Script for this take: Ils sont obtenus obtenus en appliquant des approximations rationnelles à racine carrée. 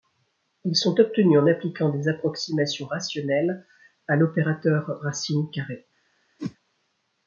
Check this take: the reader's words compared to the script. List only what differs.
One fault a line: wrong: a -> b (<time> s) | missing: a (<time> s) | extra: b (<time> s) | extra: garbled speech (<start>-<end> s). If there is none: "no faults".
missing: obtenus (1.4 s)
extra: l'opérateur (4.2 s)